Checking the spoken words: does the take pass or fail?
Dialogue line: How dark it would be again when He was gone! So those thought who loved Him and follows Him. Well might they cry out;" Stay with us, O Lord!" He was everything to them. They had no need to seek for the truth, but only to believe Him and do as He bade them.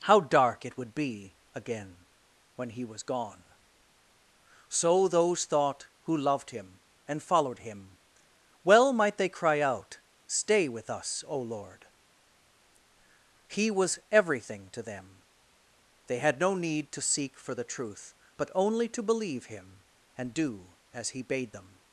fail